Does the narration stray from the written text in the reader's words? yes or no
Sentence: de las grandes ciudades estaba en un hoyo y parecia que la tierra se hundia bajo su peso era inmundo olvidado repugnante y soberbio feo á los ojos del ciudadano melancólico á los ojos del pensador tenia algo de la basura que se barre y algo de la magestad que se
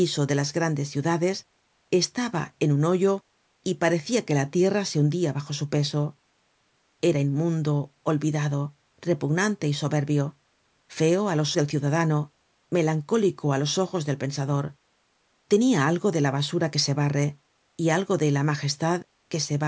yes